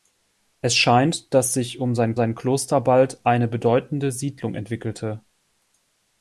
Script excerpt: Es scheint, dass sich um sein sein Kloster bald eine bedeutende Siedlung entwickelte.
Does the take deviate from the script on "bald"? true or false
false